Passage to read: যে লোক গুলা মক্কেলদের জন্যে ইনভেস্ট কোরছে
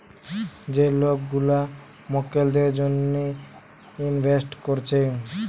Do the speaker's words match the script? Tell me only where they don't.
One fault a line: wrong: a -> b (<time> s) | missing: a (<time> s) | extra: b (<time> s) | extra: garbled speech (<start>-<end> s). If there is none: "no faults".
no faults